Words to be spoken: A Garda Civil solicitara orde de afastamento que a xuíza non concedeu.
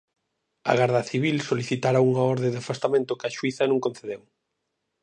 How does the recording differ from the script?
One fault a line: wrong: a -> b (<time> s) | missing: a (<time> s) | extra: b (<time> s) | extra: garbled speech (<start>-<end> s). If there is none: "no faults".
extra: unha (2.1 s)